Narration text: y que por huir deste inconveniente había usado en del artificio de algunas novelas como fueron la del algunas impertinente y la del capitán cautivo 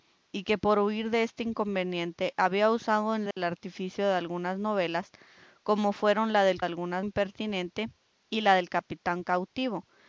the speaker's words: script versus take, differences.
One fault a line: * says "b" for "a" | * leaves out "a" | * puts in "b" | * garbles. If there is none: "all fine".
all fine